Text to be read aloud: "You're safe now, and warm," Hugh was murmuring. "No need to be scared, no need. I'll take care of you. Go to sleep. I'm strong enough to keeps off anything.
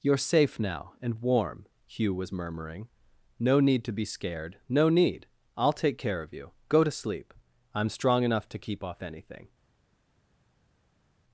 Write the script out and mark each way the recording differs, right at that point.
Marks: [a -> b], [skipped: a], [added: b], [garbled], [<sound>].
"You're safe now, and warm," Hugh was murmuring. "No need to be scared, no need. I'll take care of you. Go to sleep. I'm strong enough to [keeps -> keep] off anything.